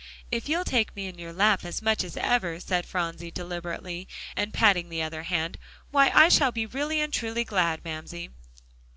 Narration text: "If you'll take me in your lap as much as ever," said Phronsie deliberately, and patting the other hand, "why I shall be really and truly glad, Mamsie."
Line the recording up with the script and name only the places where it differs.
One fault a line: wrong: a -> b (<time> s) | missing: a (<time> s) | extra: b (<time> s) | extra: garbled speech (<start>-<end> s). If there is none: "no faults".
no faults